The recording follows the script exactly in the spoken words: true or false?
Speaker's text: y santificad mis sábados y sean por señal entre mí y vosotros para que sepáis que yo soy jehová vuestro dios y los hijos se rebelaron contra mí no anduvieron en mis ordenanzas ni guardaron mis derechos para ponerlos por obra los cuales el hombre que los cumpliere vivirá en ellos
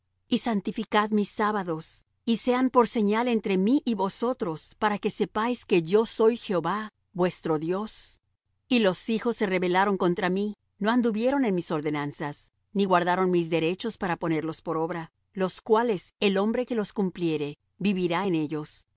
true